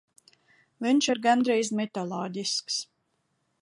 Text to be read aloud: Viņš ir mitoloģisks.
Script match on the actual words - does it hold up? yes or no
no